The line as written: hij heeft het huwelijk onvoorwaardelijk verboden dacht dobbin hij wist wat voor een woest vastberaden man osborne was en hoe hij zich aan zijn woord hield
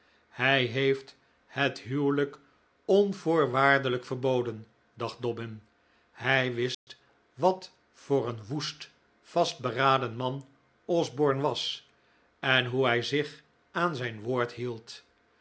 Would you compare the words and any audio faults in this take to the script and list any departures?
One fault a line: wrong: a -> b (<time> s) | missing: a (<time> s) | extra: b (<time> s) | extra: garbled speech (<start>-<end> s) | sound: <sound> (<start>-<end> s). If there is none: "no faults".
sound: dropout (6.7-6.9 s)